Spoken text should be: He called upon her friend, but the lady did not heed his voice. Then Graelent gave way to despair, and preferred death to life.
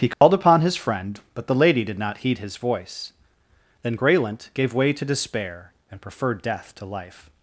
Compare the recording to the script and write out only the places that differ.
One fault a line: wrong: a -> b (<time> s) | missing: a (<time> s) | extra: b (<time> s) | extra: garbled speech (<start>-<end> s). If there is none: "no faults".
wrong: her -> his (0.6 s)